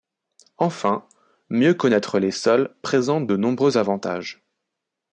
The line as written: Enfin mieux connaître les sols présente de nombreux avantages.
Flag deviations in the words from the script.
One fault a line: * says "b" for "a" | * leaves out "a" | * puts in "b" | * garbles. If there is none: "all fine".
all fine